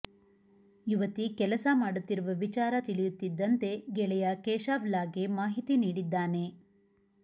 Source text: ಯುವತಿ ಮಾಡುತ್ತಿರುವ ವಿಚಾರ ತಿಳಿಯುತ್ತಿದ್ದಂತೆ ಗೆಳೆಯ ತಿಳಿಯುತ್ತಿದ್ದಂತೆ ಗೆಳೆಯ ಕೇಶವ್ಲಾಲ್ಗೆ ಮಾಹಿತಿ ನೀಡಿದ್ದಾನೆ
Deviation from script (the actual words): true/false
true